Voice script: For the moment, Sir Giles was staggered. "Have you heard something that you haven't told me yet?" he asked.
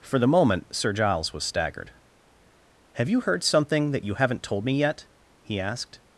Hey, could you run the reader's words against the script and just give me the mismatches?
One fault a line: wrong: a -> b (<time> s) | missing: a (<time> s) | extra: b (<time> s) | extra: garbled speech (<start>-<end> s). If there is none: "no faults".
no faults